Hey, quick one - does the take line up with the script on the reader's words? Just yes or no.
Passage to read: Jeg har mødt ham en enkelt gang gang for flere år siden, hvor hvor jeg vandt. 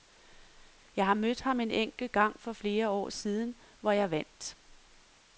no